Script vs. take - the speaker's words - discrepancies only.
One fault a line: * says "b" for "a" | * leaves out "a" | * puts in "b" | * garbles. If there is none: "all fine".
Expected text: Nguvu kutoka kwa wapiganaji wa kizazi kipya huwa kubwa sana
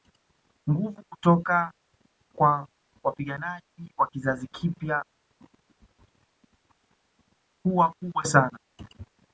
all fine